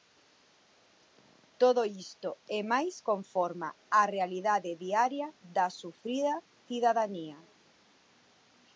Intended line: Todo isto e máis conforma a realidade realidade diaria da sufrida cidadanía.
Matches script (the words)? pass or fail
fail